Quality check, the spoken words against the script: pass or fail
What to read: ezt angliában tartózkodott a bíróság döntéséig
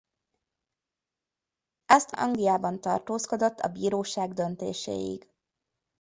pass